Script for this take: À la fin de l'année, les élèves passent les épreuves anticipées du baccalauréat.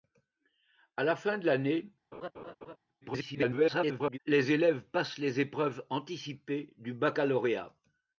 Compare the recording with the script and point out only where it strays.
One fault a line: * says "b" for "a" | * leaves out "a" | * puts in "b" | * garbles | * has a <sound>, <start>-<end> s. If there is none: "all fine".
* has a laugh, 2.1-2.8 s
* garbles